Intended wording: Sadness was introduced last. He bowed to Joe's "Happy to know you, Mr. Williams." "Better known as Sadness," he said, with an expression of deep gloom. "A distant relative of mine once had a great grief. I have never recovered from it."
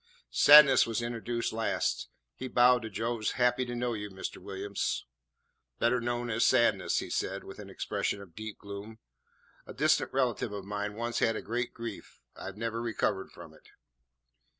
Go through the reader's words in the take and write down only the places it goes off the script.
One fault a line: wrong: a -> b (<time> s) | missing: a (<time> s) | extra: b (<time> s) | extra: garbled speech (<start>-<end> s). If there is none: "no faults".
no faults